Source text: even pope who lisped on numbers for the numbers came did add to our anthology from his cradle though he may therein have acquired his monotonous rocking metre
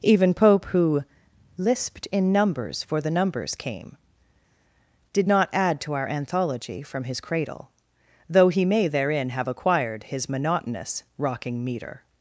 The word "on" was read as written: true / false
false